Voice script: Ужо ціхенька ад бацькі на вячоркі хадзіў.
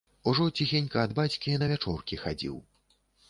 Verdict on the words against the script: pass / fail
pass